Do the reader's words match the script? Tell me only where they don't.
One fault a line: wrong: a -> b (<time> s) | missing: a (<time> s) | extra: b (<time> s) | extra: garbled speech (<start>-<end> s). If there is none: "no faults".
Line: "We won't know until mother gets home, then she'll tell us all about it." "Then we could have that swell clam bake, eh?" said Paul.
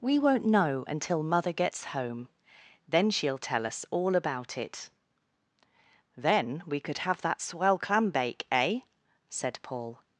no faults